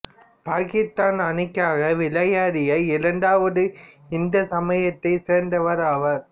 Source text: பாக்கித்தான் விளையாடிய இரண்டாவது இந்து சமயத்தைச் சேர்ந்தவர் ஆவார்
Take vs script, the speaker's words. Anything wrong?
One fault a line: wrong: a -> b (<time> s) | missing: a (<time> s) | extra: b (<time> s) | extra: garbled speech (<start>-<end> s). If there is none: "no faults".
extra: அணிக்காக (1.2 s)